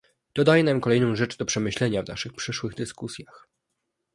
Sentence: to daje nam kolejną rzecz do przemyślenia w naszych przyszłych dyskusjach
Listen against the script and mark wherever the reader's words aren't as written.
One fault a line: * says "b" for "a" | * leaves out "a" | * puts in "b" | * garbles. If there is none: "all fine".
all fine